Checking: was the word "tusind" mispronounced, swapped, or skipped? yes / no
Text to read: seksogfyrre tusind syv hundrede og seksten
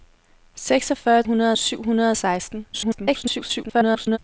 yes